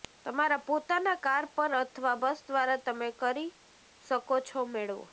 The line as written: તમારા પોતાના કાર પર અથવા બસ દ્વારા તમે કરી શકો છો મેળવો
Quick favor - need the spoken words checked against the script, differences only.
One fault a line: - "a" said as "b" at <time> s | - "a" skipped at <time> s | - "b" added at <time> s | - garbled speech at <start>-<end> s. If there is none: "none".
none